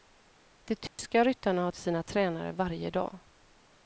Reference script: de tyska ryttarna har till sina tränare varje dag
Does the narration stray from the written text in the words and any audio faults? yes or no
yes